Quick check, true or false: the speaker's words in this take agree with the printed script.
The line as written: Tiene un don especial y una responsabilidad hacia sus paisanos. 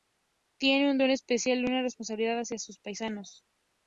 true